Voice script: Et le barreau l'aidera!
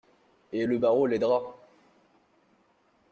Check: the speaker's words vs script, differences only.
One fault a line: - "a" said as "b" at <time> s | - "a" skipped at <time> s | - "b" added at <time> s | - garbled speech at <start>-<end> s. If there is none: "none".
none